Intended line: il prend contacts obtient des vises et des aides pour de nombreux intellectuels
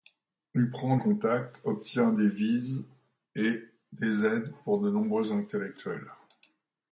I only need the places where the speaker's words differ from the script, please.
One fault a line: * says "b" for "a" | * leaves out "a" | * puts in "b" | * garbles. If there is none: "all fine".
all fine